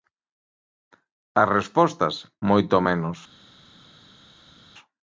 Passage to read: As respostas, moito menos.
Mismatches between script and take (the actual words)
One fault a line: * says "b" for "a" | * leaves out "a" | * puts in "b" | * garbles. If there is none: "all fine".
all fine